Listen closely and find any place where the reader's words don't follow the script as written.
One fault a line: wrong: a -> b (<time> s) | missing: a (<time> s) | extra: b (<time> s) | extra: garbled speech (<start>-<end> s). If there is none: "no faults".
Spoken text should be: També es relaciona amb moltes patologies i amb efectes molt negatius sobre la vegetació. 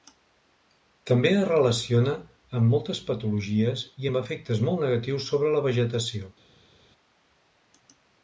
no faults